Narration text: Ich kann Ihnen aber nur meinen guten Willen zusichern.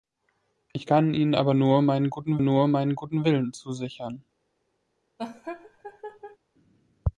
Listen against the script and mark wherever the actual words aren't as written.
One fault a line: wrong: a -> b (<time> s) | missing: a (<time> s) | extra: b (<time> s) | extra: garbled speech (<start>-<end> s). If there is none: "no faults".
extra: nur meinen guten (2.4 s)